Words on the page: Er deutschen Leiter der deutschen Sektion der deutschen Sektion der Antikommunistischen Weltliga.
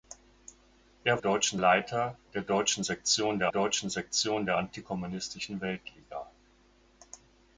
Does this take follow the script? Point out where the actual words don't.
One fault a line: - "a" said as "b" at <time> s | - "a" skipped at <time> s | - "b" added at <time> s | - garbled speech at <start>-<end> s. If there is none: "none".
none